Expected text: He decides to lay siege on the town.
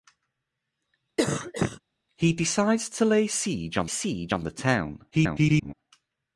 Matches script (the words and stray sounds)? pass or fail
fail